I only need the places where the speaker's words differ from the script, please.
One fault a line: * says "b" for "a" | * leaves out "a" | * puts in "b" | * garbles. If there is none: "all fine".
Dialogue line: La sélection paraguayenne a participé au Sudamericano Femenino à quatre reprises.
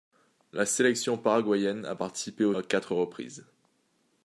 * leaves out "Sudamericano Femenino"